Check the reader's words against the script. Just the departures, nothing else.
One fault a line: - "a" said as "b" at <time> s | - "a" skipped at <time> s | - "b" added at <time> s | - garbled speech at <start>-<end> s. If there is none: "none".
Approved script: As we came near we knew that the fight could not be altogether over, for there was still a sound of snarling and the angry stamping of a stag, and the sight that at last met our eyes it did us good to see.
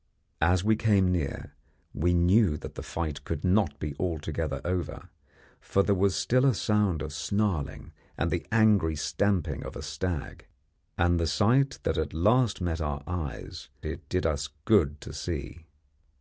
none